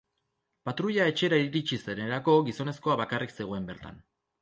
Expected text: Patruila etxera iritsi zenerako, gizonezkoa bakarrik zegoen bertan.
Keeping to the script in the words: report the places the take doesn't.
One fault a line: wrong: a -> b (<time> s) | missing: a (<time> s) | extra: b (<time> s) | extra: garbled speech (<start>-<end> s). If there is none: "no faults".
no faults